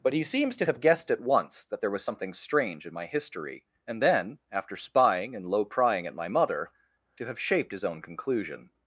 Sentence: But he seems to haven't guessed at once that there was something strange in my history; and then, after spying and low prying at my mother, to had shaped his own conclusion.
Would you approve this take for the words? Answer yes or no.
no